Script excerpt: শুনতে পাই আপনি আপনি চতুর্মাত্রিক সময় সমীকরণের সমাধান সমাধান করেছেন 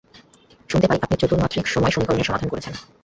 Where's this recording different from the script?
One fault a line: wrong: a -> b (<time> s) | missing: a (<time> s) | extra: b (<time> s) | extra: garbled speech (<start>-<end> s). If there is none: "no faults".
missing: আপনি (1.1 s)
missing: সমাধান (2.5 s)